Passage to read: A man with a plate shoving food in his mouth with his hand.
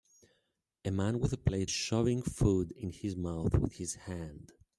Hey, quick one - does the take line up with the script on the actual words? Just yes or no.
yes